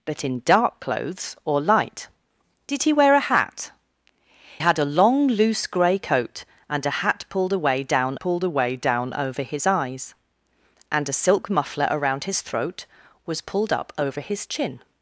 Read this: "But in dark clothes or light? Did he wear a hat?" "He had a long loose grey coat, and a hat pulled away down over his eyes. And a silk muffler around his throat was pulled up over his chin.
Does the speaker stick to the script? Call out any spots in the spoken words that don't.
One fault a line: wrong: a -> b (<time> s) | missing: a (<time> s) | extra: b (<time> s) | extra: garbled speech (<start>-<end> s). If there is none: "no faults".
missing: He (3.7 s)
extra: pulled away down (8.2 s)